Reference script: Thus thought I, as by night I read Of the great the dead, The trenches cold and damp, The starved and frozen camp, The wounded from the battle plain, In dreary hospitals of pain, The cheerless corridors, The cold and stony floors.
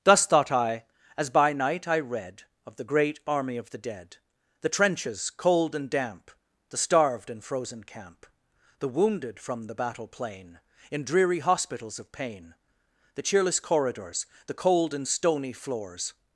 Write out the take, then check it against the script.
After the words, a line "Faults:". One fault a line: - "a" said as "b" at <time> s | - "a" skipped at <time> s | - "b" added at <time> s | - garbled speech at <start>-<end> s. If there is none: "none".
Thus thought I, as by night I read Of the great army of the dead, The trenches cold and damp, The starved and frozen camp, The wounded from the battle plain, In dreary hospitals of pain, The cheerless corridors, The cold and stony floors.
Faults:
- "army of" added at 3.3 s